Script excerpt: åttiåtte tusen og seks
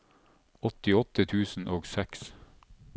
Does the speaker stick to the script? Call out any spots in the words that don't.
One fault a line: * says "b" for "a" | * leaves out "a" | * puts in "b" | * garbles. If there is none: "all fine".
all fine